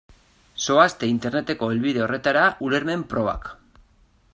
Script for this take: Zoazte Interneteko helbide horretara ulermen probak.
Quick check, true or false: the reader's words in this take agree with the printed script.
true